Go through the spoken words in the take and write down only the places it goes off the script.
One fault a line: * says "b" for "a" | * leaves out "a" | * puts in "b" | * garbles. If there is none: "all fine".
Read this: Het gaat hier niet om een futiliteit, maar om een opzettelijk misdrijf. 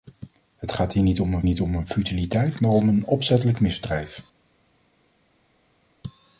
* puts in "niet om een"